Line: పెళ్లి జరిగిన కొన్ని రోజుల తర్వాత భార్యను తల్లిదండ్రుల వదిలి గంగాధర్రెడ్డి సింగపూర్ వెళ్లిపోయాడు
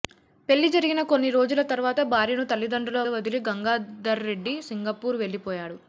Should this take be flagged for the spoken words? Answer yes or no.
no